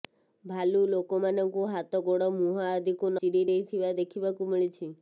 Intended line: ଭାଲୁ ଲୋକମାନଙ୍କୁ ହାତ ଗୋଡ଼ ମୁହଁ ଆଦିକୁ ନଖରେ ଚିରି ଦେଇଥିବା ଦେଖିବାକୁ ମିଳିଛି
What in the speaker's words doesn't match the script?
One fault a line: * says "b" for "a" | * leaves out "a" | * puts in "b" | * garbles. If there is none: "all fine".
* leaves out "ନଖରେ"